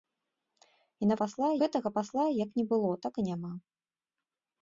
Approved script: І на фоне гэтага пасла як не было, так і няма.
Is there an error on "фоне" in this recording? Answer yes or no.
yes